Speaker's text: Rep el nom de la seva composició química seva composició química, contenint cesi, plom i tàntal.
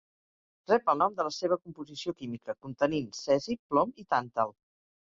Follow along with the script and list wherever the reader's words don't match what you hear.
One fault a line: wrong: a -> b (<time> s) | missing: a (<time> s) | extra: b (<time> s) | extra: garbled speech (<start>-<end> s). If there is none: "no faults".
missing: seva composició química (2.6 s)